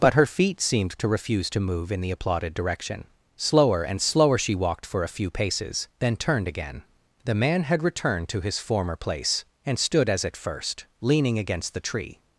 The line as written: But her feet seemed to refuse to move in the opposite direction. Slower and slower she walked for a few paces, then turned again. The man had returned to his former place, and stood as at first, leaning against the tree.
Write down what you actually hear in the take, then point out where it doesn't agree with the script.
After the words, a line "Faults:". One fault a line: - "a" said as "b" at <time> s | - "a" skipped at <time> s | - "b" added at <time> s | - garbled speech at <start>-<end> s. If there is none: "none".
But her feet seemed to refuse to move in the applauded direction. Slower and slower she walked for a few paces, then turned again. The man had returned to his former place, and stood as at first, leaning against the tree.
Faults:
- "opposite" said as "applauded" at 2.1 s